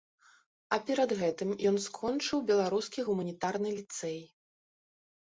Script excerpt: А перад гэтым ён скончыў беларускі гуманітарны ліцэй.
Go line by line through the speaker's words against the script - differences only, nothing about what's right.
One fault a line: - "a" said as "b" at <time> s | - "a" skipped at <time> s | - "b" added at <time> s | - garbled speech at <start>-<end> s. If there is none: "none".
none